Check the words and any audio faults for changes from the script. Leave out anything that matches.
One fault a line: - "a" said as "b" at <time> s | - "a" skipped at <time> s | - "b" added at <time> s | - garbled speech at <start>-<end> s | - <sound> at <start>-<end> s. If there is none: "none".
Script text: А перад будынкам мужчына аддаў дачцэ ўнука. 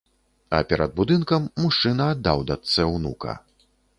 none